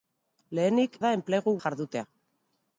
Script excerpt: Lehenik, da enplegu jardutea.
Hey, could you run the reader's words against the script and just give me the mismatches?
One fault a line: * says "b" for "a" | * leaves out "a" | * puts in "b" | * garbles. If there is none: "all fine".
all fine